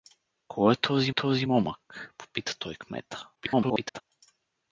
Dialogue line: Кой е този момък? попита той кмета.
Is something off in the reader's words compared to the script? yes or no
yes